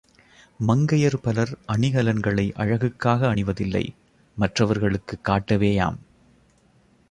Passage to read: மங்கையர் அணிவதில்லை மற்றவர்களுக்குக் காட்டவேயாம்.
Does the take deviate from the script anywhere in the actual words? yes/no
yes